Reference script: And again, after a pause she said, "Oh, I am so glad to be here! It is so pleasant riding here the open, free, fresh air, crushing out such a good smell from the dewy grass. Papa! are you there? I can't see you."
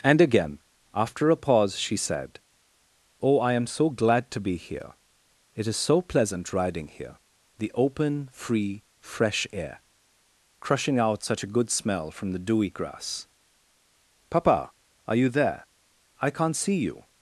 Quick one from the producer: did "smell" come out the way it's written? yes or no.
yes